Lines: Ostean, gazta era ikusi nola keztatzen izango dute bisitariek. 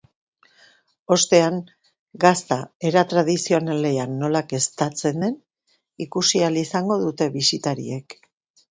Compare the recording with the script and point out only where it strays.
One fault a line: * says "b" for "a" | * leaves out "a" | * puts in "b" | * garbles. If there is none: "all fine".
* says "tradizionalean" for "ikusi"
* puts in "den ikusi ahal"